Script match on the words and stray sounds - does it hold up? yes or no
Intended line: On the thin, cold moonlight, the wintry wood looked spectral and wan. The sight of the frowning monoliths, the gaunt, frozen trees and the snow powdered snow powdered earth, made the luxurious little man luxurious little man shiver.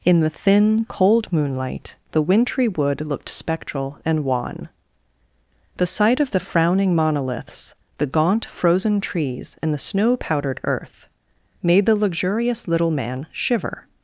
no